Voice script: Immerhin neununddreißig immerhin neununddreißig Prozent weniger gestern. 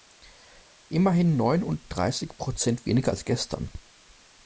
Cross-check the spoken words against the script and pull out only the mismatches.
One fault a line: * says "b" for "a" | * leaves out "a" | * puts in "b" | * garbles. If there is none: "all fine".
* leaves out "immerhin neununddreißig"
* puts in "als"